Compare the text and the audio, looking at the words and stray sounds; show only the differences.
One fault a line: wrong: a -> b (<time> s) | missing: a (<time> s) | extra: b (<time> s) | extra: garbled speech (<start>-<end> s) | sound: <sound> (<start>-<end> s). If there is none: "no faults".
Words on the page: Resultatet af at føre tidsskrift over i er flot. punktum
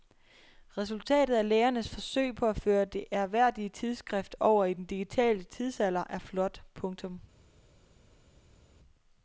extra: lægernes forsøg på (1.5 s)
extra: det ærværdige (2.9 s)
extra: den digitale tidsalder (4.7 s)